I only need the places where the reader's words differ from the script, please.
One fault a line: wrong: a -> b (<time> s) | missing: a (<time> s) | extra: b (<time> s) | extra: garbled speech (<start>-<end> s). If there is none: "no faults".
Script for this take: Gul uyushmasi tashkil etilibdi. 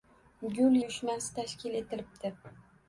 no faults